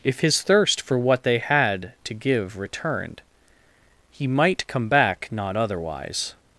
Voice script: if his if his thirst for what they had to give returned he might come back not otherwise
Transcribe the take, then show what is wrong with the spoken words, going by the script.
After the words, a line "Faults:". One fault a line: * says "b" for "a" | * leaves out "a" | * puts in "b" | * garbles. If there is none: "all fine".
if his thirst for what they had to give returned he might come back not otherwise
Faults:
* leaves out "if his"